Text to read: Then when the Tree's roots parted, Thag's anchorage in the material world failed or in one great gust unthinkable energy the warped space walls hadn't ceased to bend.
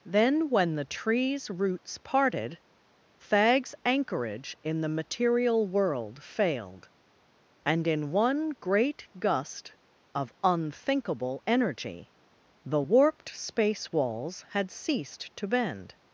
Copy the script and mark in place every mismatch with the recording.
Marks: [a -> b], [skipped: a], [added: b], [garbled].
Then when the Tree's roots parted, Thag's anchorage in the material world failed [or -> and] in one great gust [added: of] unthinkable energy the warped space walls [hadn't -> had] ceased to bend.